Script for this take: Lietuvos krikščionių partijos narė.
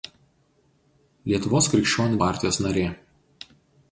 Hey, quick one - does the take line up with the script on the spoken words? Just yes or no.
yes